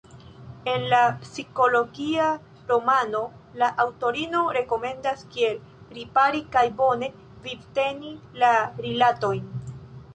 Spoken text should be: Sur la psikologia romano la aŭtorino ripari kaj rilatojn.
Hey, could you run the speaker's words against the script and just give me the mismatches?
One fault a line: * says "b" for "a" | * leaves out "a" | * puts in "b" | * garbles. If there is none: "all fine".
* says "En" for "Sur"
* puts in "rekomendas kiel"
* puts in "bone vivteni la"